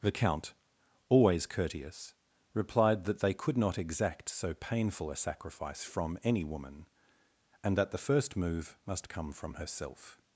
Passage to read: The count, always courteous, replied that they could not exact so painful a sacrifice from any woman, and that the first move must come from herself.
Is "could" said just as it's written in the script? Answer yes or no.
yes